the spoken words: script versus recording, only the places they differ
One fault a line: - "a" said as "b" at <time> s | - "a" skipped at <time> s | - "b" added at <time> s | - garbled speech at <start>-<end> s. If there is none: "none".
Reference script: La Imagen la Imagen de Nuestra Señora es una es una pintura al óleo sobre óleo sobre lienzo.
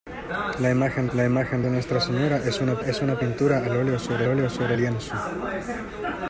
none